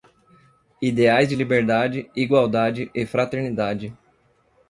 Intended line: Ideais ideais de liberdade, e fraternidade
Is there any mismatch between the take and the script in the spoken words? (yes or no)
yes